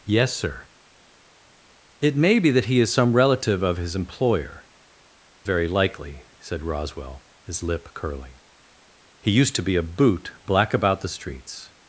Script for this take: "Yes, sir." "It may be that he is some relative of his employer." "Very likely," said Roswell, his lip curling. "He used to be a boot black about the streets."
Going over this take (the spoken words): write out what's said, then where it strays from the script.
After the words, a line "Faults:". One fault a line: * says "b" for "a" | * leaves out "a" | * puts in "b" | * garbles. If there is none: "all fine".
"Yes, sir." "It may be that he is some relative of his employer." "Very likely," said Roswell, his lip curling. "He used to be a boot black about the streets."
Faults:
all fine